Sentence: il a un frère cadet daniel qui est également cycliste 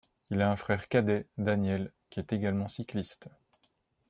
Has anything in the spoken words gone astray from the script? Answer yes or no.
no